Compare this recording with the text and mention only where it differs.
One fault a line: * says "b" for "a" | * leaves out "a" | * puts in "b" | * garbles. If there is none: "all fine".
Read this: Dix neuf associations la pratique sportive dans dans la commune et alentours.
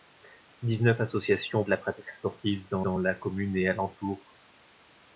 all fine